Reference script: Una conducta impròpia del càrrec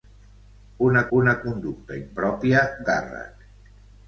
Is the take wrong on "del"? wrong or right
wrong